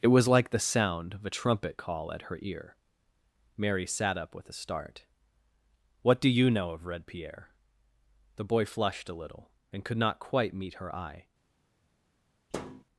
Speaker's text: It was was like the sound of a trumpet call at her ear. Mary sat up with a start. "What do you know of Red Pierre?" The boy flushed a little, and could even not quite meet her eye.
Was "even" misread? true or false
true